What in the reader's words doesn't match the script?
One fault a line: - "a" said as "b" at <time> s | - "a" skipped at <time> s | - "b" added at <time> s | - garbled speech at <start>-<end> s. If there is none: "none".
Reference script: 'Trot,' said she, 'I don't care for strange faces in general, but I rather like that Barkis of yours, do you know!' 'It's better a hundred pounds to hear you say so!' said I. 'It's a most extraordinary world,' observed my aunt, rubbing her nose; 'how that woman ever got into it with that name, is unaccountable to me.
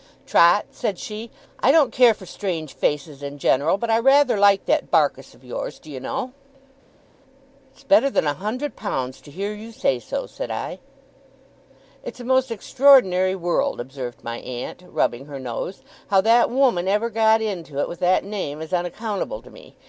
- "than" added at 8.1 s